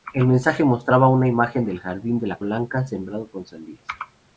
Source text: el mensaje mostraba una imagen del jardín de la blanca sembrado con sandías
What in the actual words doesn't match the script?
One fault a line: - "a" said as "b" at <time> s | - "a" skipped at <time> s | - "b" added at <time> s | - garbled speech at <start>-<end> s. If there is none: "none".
none